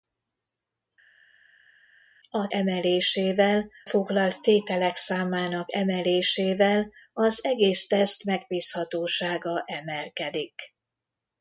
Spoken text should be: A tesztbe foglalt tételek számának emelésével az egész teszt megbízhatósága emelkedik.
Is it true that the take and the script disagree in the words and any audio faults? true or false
true